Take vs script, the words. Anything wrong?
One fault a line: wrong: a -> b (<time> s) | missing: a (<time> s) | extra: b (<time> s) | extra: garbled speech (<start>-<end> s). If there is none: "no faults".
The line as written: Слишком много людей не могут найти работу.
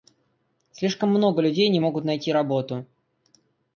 no faults